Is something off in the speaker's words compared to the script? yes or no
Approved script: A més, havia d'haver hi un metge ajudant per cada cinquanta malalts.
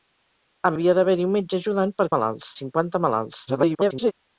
yes